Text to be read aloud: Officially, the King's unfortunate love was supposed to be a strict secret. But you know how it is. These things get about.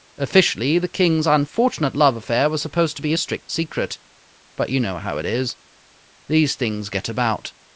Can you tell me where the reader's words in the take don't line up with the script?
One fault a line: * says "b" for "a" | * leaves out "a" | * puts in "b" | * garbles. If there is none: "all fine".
* puts in "affair"